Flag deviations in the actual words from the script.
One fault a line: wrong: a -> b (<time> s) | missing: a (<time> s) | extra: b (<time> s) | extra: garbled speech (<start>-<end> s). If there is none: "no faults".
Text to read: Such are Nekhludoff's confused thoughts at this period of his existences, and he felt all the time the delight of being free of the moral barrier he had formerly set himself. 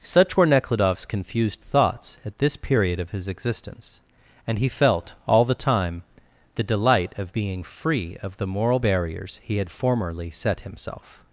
wrong: are -> were (0.3 s)
wrong: existences -> existence (3.3 s)
wrong: barrier -> barriers (8.8 s)